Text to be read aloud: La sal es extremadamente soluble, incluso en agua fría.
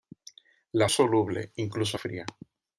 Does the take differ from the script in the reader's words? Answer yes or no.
yes